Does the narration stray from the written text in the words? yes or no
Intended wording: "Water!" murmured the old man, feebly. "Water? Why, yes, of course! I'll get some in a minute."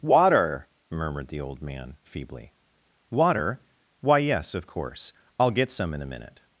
no